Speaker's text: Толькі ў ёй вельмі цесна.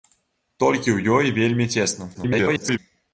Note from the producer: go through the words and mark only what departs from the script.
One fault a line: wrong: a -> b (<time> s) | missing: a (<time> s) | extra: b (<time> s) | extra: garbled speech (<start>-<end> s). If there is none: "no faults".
extra: garbled speech (2.1-2.8 s)